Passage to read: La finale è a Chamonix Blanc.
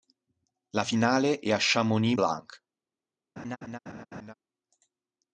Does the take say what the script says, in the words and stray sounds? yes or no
no